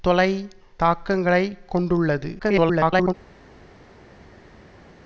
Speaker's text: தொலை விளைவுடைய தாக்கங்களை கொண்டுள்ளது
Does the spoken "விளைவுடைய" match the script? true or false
false